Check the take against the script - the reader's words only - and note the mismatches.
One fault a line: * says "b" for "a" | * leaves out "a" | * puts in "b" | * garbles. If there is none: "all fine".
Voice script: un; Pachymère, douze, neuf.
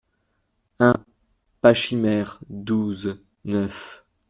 all fine